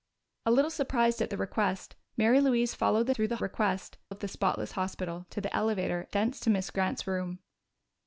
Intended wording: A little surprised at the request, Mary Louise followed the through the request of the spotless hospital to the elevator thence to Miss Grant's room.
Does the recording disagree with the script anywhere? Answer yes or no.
no